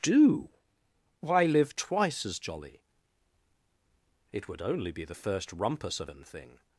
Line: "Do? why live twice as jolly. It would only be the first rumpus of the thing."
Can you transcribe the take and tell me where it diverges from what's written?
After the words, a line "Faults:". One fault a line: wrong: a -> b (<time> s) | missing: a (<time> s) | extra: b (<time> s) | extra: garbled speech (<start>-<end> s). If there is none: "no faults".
"Do? why live twice as jolly. It would only be the first rumpus of an thing."
Faults:
wrong: the -> an (6.1 s)